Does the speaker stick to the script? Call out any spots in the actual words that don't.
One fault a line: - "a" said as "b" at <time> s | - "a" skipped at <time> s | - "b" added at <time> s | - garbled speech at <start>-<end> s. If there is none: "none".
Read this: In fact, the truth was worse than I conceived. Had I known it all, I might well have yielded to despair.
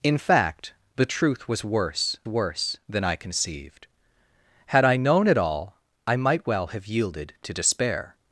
- "worse" added at 2.3 s